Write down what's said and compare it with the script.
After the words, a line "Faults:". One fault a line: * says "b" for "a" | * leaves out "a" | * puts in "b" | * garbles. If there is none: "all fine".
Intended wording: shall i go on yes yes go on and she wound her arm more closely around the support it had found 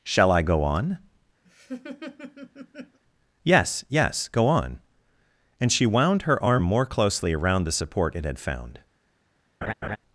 shall i go on yes yes go on and she wound her arm more closely around the support it had found
Faults:
all fine